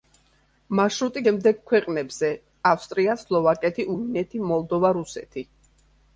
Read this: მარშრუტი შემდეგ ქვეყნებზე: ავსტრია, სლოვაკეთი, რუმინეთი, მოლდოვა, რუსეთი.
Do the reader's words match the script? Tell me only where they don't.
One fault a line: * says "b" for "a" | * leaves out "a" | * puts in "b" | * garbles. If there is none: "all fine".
all fine